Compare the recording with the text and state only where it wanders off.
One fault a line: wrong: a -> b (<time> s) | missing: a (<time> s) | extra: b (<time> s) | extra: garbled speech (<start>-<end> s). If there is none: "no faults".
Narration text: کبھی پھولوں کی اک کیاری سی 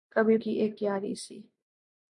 missing: پھولوں (0.4 s)